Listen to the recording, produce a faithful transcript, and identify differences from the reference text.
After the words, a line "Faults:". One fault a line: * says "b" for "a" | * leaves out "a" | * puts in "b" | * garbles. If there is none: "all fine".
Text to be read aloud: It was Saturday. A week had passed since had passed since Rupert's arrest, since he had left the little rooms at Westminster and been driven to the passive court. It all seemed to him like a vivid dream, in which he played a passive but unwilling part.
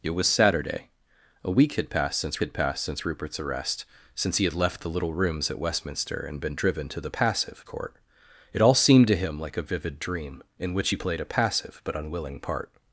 It was Saturday. A week had passed since had passed since Rupert's arrest, since he had left the little rooms at Westminster and been driven to the passive court. It all seemed to him like a vivid dream, in which he played a passive but unwilling part.
Faults:
all fine